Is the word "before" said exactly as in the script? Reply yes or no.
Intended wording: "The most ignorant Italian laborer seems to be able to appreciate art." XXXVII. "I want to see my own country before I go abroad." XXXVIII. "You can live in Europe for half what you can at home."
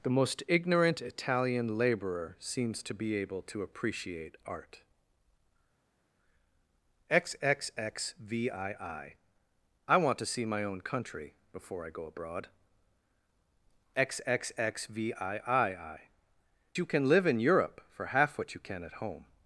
yes